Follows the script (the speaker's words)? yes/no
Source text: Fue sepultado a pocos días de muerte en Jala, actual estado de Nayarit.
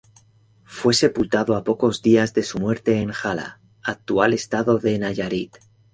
no